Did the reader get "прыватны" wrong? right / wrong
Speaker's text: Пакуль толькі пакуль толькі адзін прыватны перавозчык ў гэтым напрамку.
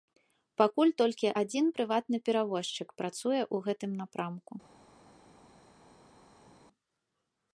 right